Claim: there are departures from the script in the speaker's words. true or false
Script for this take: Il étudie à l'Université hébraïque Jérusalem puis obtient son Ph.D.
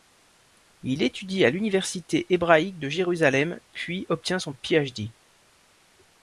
true